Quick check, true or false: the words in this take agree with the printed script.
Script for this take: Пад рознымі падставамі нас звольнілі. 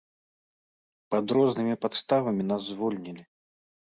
true